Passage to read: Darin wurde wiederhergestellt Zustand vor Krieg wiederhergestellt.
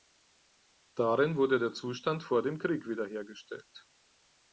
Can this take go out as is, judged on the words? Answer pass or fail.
fail